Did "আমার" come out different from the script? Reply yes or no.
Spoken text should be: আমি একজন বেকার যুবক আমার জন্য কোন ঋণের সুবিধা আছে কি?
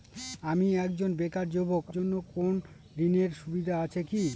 yes